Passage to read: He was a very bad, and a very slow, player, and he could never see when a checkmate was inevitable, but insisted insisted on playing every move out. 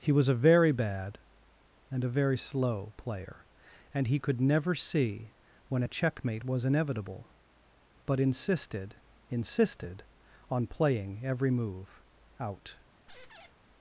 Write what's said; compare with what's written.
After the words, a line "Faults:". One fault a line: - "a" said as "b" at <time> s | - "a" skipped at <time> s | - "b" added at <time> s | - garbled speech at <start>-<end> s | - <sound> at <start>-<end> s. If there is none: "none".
He was a very bad, and a very slow, player, and he could never see when a checkmate was inevitable, but insisted insisted on playing every move out.
Faults:
- squeak at 13.1-13.5 s